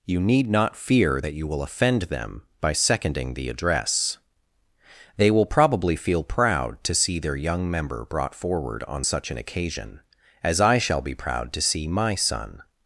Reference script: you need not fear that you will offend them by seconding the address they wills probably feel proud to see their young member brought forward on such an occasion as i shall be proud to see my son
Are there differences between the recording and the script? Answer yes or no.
yes